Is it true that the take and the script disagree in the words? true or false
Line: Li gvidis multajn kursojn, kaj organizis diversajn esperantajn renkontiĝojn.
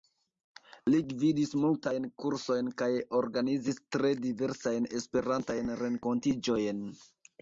true